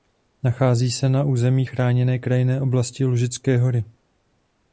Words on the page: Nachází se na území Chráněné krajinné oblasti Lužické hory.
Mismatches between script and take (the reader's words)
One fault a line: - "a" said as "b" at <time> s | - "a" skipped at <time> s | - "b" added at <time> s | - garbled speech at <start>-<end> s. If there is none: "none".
none